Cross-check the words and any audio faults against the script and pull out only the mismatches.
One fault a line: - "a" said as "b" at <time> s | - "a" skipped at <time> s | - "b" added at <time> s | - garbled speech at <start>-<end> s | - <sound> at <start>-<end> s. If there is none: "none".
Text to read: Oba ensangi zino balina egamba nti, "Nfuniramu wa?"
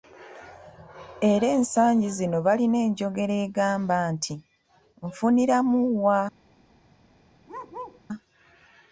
- "Oba" said as "Era" at 1.3 s
- "enjogera" added at 2.9 s
- bark at 7.5-8.0 s